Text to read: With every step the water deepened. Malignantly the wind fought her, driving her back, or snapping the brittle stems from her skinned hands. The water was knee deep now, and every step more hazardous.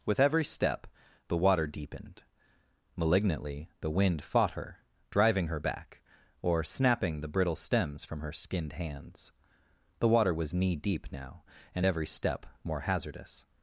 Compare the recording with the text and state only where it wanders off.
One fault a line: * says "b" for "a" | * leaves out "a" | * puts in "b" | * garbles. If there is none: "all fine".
all fine